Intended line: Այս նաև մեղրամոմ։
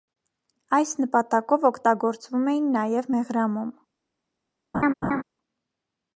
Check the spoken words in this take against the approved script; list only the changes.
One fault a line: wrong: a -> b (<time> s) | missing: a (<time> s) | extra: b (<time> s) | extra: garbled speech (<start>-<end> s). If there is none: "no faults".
extra: նպատակով օգտագործվում էին (1.0 s)